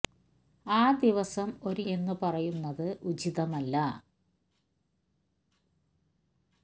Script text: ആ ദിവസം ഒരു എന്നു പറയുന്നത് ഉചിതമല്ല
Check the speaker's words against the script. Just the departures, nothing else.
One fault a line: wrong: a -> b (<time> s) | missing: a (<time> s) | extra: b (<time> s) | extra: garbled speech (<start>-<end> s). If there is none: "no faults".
no faults